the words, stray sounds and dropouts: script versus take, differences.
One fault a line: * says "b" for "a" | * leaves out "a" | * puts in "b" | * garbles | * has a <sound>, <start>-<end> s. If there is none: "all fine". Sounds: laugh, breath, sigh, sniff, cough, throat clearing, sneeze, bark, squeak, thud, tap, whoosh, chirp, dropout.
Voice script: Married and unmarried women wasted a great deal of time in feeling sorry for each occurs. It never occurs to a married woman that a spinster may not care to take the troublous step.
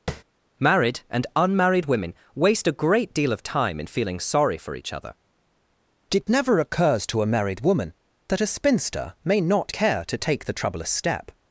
* has a tap, 0.1-0.2 s
* says "waste" for "wasted"
* says "other" for "occurs"